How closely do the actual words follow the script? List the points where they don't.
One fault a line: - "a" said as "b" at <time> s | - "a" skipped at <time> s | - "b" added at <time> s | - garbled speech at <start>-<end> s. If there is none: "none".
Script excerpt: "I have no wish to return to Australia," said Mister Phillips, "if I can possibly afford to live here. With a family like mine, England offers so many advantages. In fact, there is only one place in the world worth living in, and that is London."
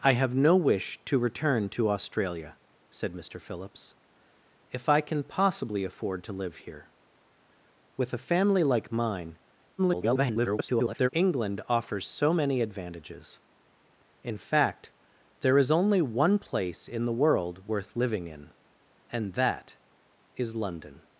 - garbled speech at 9.8-11.1 s